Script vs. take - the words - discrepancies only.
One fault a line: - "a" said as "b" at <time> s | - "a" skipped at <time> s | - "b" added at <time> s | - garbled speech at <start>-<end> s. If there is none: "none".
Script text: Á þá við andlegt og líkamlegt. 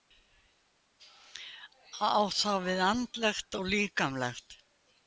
none